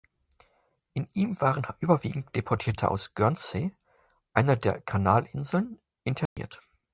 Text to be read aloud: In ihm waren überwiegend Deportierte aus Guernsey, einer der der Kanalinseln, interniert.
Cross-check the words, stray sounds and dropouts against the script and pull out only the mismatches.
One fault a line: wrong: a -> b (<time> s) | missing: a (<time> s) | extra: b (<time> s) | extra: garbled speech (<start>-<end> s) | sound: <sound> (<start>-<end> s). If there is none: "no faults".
missing: der (4.8 s)
sound: dropout (6.3-6.4 s)